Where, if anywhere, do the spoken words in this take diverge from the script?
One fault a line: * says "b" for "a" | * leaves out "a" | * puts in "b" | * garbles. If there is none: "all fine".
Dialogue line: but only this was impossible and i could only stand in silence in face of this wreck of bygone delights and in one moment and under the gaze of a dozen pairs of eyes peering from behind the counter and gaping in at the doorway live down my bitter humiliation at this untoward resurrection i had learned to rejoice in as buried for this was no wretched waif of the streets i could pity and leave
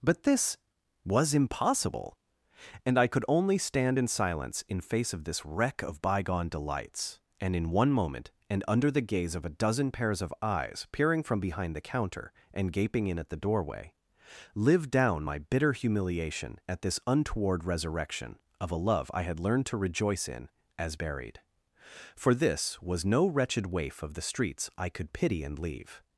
* leaves out "only"
* puts in "of a love"